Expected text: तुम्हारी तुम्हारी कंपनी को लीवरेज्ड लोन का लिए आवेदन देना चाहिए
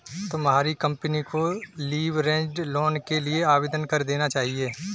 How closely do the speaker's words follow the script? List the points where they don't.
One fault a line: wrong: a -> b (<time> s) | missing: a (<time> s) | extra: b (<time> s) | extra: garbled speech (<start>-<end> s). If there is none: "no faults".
missing: तुम्हारी (0.7 s)
wrong: का -> के (3.1 s)
extra: कर (3.9 s)